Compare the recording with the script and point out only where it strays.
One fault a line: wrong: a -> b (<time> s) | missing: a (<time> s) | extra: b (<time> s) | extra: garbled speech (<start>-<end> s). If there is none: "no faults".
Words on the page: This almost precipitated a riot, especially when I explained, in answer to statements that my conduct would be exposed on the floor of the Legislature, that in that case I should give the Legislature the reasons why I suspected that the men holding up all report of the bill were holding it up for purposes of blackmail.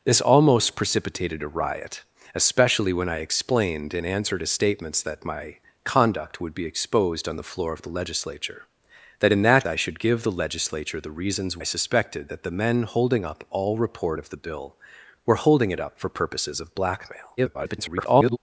missing: case (9.7 s)
missing: why (11.6 s)
extra: garbled speech (17.4-18.4 s)